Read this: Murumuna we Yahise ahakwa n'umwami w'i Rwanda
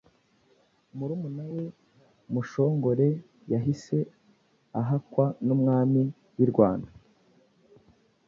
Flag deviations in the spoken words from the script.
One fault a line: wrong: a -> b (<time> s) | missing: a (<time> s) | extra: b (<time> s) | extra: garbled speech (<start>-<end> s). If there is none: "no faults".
extra: Mushongore (2.3 s)